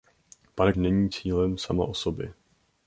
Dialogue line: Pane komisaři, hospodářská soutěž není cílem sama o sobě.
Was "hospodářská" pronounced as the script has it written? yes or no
no